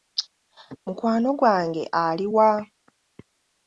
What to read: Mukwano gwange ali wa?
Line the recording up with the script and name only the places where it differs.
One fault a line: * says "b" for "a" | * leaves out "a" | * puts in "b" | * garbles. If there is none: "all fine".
all fine